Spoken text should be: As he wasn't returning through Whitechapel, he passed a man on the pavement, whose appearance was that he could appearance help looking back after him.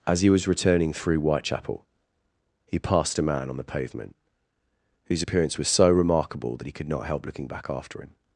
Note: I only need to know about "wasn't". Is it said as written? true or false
false